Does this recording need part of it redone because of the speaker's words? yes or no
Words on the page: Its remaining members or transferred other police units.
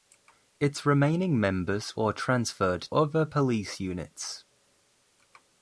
no